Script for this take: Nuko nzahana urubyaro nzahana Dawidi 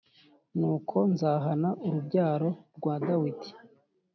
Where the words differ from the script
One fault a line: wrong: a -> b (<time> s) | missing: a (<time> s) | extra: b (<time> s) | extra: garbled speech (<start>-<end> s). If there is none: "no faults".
wrong: nzahana -> rwa (2.8 s)